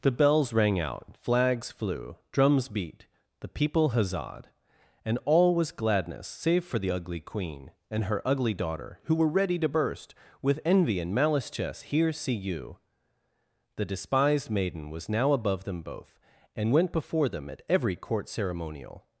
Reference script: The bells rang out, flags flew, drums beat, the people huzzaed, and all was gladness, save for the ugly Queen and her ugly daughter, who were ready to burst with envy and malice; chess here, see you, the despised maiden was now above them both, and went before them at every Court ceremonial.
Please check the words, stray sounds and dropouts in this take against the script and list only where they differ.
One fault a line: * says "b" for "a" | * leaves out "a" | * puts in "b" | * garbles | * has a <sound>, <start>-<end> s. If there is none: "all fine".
all fine